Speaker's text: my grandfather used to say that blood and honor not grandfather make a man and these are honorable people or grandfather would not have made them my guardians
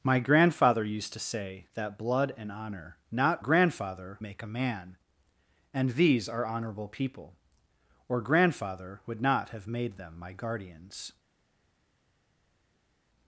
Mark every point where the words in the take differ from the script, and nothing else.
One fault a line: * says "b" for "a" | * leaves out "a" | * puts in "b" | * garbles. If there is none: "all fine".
all fine